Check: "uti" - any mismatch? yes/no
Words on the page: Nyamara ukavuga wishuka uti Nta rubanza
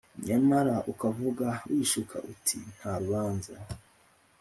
no